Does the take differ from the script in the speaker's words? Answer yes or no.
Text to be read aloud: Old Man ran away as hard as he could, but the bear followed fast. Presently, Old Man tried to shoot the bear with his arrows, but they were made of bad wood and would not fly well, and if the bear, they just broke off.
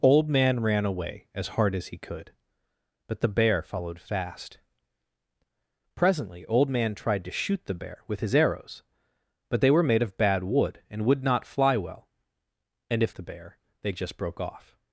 no